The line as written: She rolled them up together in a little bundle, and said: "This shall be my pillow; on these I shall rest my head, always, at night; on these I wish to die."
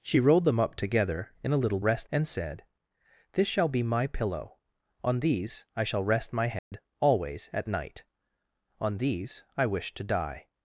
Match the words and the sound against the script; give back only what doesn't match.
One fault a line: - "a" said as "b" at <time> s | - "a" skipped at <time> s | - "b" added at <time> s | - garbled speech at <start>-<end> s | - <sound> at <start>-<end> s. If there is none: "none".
- "bundle" said as "rest" at 1.8 s
- dropout at 6.6-6.7 s